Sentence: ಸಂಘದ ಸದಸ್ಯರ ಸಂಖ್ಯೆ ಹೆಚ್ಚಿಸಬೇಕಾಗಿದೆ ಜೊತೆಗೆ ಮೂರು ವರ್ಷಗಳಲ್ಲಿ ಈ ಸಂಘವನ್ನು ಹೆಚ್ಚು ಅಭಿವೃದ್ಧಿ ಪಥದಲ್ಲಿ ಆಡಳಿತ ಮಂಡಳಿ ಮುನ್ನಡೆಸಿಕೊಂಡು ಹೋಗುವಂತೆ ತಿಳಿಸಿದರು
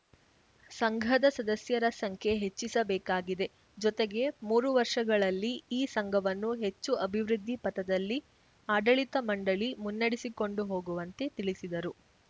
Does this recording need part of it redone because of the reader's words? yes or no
no